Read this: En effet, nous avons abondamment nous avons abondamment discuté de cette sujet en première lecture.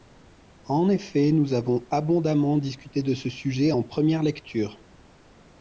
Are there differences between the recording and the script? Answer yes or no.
yes